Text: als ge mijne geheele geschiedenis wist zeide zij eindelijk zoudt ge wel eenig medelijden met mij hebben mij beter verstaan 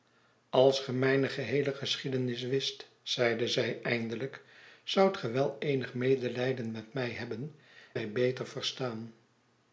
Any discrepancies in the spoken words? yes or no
no